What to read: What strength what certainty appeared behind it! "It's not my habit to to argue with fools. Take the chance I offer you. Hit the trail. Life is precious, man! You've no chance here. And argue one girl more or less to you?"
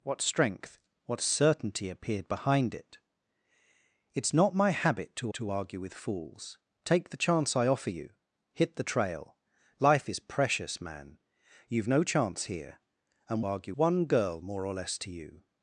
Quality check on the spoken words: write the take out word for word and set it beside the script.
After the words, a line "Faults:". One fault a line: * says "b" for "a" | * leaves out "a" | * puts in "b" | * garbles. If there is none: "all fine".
What strength what certainty appeared behind it! "It's not my habit to to argue with fools. Take the chance I offer you. Hit the trail. Life is precious, man! You've no chance here. And argue one girl more or less to you?"
Faults:
all fine